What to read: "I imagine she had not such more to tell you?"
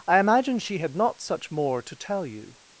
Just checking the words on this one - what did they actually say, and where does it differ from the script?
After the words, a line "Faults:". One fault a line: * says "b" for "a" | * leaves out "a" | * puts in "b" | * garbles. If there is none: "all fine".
"I imagine she had not such more to tell you?"
Faults:
all fine